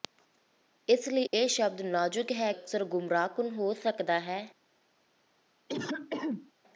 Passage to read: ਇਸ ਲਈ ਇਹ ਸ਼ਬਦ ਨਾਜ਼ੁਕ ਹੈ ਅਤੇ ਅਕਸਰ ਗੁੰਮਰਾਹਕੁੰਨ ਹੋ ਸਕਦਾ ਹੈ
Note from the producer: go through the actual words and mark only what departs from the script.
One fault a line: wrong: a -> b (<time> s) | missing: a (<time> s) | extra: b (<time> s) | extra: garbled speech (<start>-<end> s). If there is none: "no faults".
missing: ਅਤੇ (2.5 s)